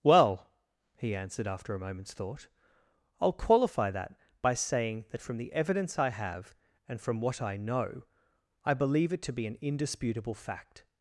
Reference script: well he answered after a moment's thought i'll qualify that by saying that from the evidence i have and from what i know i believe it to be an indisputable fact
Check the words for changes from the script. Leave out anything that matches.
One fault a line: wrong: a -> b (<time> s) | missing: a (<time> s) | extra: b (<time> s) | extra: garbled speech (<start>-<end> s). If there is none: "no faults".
no faults